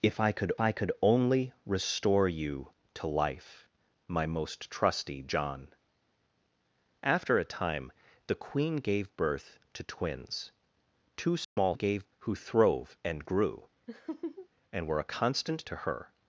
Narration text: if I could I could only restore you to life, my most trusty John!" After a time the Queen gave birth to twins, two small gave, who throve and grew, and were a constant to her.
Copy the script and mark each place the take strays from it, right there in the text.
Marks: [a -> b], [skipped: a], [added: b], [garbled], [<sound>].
if I could I could only restore you to life, my most trusty John!" After a time the Queen gave birth to twins, two small [dropout] gave, who throve and grew, [laugh] and were a constant to her.